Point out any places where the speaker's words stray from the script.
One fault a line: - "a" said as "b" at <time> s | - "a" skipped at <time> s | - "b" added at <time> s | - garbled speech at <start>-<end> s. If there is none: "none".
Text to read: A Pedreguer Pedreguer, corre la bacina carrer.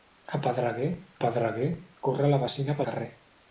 none